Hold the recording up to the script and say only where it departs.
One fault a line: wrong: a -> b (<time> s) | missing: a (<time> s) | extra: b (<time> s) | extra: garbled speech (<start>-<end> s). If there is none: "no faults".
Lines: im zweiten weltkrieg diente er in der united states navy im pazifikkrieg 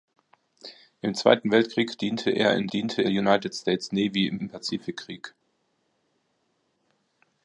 wrong: der -> diente (2.7 s)
extra: im (4.4 s)